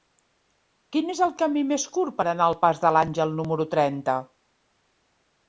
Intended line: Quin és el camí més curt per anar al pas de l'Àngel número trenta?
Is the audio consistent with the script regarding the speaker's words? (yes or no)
yes